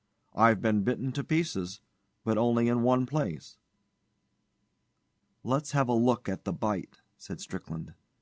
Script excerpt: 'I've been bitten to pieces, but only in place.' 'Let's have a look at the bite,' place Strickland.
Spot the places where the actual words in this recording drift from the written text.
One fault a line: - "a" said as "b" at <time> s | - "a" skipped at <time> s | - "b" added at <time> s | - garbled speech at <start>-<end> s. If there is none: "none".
- "one" added at 2.8 s
- "place" said as "said" at 7.2 s